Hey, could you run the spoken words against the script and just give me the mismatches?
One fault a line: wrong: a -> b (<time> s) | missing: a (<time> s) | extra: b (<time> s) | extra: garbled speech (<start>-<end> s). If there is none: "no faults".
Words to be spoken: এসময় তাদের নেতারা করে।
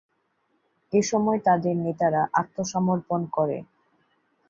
extra: আত্মসমর্পণ (2.3 s)